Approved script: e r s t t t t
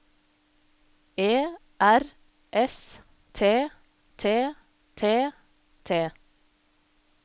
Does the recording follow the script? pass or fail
pass